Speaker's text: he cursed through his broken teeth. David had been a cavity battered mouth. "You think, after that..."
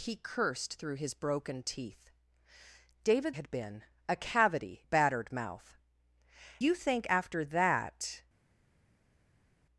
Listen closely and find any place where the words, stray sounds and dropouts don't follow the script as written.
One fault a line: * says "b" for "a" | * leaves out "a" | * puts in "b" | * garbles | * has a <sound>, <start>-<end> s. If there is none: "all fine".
all fine